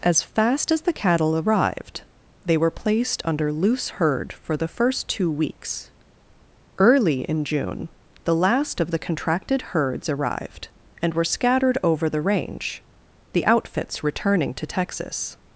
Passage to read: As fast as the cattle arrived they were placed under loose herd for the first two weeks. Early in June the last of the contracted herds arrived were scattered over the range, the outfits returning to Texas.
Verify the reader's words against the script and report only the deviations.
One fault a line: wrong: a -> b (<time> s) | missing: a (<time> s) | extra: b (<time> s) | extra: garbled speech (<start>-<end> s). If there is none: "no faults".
extra: and (11.0 s)